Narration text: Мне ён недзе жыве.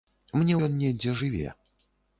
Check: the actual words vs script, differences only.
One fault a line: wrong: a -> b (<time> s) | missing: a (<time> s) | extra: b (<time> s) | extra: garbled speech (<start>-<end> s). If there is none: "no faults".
no faults